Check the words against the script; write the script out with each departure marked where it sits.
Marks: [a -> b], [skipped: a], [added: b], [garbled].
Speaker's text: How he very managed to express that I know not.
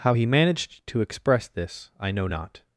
How he [skipped: very] managed to express [that -> this] I know not.